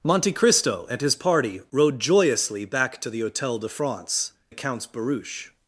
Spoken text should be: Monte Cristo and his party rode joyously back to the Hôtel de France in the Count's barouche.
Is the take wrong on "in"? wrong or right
wrong